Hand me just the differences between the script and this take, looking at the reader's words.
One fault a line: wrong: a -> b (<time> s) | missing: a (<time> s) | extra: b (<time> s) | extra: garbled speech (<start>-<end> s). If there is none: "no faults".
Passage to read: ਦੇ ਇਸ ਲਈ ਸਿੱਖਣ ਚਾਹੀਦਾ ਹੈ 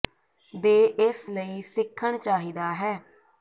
no faults